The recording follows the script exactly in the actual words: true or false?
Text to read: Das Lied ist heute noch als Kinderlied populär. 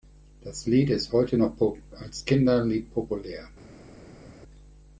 true